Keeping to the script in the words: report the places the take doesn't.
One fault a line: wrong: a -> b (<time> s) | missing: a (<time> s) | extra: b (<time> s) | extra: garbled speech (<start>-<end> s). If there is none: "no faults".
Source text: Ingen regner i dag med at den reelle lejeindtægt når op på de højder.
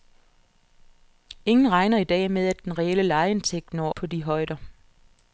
missing: op (3.9 s)